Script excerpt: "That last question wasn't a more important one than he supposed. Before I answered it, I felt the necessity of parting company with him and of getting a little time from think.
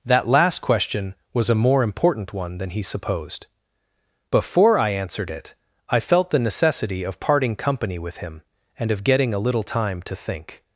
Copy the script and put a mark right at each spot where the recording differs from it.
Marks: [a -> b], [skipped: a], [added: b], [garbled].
"That last question [wasn't -> was] a more important one than he supposed. Before I answered it, I felt the necessity of parting company with him and of getting a little time [from -> to] think.